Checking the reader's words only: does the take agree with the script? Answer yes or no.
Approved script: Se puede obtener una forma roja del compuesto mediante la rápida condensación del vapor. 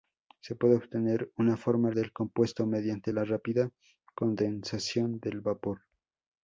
no